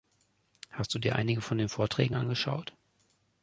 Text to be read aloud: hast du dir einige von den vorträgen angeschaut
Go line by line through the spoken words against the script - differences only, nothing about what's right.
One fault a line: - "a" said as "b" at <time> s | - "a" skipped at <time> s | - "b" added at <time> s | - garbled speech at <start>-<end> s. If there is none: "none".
none